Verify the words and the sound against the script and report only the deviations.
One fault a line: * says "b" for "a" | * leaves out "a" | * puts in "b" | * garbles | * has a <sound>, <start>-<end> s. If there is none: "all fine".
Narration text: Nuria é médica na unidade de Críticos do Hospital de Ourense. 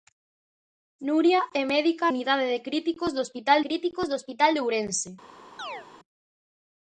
* leaves out "na"
* puts in "Críticos do Hospital"
* has a chirp, 5.6-5.9 s